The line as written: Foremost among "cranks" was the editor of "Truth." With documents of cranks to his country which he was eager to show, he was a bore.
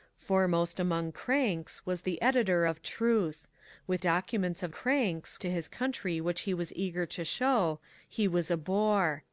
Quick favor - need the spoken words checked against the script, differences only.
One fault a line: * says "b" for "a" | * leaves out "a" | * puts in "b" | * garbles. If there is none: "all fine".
all fine